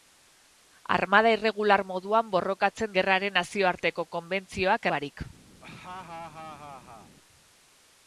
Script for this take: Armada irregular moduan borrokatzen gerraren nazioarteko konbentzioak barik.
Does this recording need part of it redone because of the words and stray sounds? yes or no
yes